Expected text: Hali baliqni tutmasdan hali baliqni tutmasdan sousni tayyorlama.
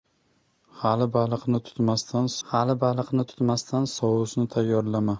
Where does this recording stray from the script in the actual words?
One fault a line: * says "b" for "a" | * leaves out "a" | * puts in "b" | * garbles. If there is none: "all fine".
all fine